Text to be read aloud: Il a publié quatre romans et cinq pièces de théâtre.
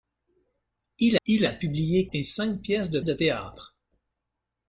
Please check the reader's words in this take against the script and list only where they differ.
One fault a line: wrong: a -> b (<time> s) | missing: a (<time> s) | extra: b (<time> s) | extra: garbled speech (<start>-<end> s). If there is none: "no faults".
extra: il (1.2 s)
missing: quatre romans (2.1 s)
extra: de (3.0 s)